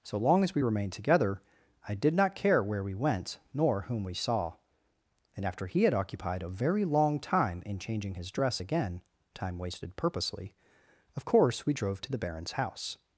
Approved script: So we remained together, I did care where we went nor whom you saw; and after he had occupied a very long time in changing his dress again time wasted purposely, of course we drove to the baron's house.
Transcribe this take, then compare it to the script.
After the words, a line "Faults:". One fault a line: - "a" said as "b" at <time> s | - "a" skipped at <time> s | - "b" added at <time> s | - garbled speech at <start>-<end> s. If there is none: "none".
So long as we remained together, I did not care where we went nor whom we saw; and after he had occupied a very long time in changing his dress again time wasted purposely, of course we drove to the baron's house.
Faults:
- "long as" added at 0.2 s
- "not" added at 2.1 s
- "you" said as "we" at 4.0 s